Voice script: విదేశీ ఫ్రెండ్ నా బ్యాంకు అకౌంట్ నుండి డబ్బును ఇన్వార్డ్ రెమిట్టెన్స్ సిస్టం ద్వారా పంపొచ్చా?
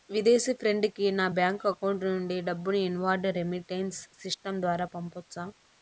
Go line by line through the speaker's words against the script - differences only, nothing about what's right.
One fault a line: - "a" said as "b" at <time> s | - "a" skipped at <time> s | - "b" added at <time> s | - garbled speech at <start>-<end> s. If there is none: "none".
- "కి" added at 0.9 s